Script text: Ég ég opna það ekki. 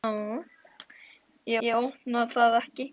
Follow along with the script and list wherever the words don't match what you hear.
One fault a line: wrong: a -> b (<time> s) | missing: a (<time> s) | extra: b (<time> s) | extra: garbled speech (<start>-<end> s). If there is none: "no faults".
no faults